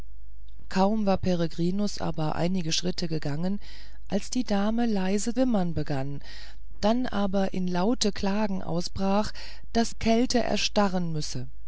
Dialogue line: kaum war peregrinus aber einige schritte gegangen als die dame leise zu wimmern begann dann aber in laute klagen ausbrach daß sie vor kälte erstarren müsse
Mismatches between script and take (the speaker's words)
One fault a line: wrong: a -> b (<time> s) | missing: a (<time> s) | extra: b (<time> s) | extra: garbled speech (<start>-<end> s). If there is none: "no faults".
missing: zu (5.3 s)
missing: sie vor (9.9 s)